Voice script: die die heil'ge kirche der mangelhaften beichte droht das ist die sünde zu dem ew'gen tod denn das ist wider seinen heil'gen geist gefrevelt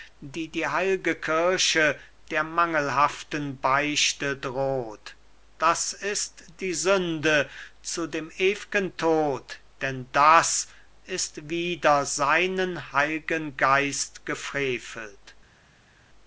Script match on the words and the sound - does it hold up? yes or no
yes